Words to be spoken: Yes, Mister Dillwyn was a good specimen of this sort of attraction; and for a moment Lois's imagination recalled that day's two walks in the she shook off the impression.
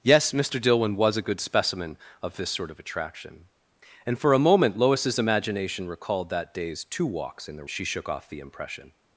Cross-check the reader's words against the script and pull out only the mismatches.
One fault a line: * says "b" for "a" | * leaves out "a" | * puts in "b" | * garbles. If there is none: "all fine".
all fine